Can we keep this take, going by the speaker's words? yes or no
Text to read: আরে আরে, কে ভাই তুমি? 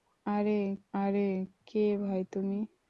yes